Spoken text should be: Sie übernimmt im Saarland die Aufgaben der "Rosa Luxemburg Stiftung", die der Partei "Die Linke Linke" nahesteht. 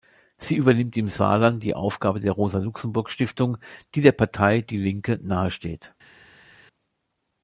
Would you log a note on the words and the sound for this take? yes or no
yes